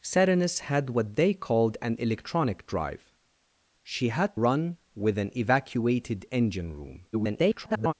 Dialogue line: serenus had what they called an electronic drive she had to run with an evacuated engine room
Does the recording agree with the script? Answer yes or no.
no